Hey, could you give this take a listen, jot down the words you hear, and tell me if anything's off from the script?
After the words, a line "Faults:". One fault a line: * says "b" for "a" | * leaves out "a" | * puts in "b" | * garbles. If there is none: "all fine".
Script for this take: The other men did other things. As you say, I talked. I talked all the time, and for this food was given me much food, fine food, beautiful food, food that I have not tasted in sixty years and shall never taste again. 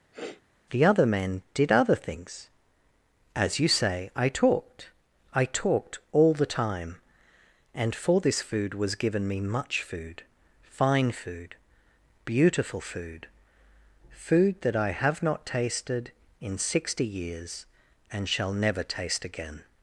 The other men did other things. As you say, I talked. I talked all the time, and for this food was given me much food, fine food, beautiful food, food that I have not tasted in sixty years and shall never taste again.
Faults:
all fine